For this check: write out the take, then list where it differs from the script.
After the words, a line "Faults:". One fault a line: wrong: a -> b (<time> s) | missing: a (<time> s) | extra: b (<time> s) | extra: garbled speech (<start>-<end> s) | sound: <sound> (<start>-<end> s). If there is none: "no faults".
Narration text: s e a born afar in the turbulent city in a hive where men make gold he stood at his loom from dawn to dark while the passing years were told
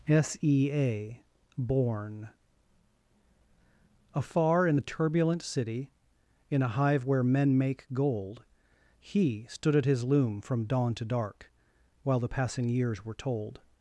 s e a born afar in the turbulent city in a hive where men make gold he stood at his loom from dawn to dark while the passing years were told
Faults:
no faults